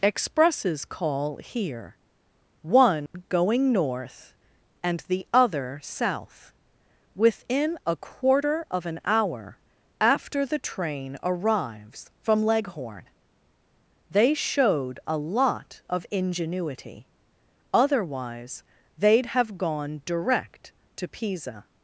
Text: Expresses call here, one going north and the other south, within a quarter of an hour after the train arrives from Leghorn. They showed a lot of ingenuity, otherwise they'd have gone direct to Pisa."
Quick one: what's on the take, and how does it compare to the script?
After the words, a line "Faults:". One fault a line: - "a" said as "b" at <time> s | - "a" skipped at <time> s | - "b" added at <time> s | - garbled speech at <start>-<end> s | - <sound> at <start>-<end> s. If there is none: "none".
Expresses call here, one going north and the other south, within a quarter of an hour after the train arrives from Leghorn. They showed a lot of ingenuity, otherwise they'd have gone direct to Pisa."
Faults:
- dropout at 3.1-3.1 s